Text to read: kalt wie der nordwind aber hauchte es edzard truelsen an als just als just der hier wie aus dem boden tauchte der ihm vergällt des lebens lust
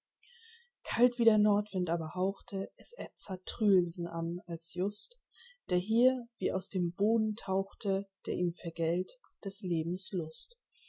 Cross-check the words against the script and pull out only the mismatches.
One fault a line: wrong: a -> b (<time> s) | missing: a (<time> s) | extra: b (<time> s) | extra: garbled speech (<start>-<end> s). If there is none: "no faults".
missing: als just (5.2 s)